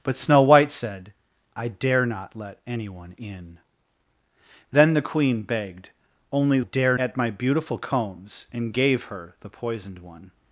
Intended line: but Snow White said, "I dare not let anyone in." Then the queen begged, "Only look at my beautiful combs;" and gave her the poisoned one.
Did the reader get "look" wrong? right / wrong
wrong